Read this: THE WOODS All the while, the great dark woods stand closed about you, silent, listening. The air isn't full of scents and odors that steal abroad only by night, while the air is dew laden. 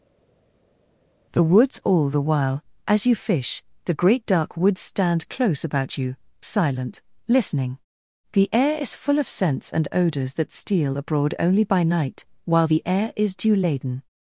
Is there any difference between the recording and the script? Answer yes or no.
yes